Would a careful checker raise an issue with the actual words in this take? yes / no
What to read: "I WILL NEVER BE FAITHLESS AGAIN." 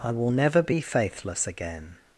no